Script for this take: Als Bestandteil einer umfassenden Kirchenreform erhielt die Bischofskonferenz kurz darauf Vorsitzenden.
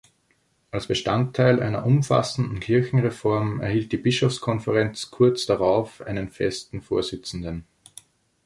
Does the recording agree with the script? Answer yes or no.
no